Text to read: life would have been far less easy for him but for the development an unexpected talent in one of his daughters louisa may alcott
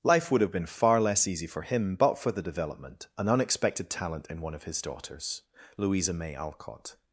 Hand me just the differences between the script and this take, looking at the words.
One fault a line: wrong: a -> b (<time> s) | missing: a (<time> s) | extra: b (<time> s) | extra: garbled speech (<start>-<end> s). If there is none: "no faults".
no faults